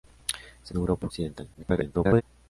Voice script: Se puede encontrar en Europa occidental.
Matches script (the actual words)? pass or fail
fail